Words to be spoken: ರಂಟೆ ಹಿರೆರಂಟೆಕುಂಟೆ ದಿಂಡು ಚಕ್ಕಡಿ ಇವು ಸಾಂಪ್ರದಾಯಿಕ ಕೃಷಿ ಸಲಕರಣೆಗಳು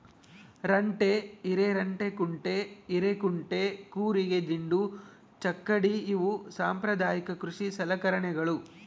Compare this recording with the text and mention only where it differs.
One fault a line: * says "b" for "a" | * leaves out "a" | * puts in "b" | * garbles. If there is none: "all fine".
* puts in "ಹಿರೇಕುಂಟೆ ಕೂರಿಗೆ"